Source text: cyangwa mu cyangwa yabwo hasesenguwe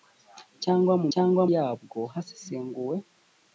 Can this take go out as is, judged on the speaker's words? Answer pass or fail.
pass